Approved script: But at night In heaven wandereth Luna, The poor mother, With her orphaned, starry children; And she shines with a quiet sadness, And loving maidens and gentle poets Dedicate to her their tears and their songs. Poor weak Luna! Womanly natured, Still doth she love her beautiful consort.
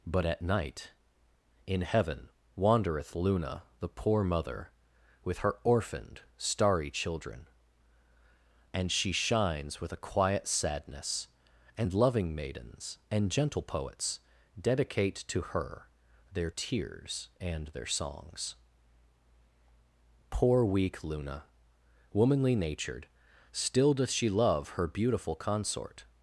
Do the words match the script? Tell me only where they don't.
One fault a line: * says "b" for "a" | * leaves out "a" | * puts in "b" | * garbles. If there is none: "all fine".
all fine